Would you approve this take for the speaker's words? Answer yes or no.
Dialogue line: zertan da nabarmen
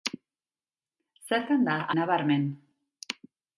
yes